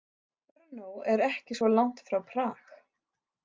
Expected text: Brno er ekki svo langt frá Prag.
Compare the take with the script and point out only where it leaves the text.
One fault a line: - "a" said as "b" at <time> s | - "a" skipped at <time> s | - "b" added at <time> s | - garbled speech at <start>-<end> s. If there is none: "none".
none